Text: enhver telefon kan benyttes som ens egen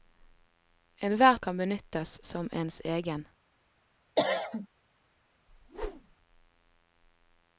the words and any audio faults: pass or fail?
fail